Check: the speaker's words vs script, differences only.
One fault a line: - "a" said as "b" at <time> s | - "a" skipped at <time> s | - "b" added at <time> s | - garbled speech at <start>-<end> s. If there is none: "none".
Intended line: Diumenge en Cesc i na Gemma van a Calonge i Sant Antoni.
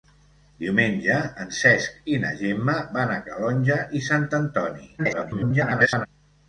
- garbled speech at 5.0-6.1 s